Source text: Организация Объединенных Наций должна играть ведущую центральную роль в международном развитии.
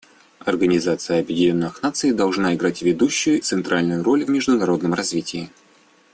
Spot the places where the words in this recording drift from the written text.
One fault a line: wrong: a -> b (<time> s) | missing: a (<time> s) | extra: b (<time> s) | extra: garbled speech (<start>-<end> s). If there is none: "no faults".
no faults